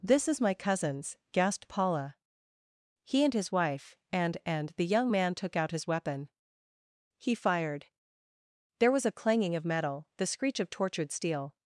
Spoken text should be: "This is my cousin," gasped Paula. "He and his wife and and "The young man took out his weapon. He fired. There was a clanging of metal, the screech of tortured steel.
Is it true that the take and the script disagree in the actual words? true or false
true